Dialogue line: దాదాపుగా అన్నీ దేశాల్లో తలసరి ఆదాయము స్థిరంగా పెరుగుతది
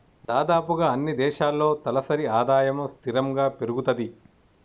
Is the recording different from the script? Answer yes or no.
no